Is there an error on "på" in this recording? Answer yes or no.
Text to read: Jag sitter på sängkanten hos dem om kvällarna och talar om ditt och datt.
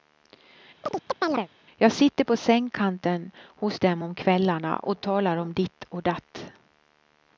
no